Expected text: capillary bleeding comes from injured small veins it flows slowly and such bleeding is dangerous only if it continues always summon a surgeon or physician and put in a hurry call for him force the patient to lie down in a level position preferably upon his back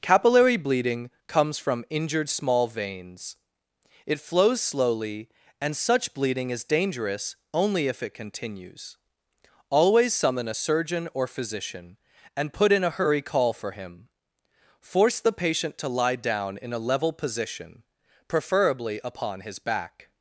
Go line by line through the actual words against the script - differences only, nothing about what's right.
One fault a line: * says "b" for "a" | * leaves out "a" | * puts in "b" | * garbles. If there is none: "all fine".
all fine